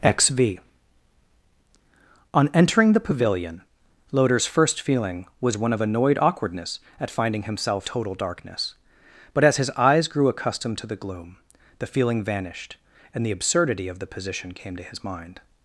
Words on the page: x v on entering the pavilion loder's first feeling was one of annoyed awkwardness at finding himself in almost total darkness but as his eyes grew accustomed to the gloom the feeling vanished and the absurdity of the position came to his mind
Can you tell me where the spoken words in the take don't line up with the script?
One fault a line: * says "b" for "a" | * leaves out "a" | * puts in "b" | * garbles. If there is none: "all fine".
* leaves out "in almost"